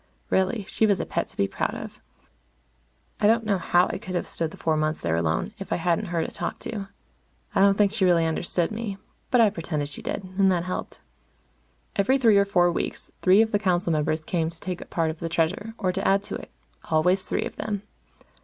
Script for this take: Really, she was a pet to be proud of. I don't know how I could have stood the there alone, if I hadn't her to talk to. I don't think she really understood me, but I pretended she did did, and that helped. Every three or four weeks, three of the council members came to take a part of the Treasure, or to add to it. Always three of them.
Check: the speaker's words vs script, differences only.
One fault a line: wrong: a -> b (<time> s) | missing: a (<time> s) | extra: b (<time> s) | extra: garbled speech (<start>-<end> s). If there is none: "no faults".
extra: four months (4.6 s)
missing: did (10.2 s)